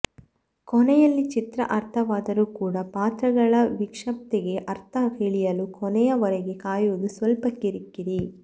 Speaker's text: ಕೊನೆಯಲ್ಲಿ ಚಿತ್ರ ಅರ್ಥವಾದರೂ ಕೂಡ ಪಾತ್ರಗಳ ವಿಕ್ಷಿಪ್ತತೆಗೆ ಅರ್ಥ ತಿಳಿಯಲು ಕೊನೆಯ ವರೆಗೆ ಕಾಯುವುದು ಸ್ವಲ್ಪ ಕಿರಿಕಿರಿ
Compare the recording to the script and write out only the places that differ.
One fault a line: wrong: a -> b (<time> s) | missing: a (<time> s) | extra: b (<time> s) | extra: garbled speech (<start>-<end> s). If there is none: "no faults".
no faults